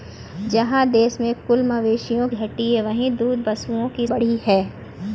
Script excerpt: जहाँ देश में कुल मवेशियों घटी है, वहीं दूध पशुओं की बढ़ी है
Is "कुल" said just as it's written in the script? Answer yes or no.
yes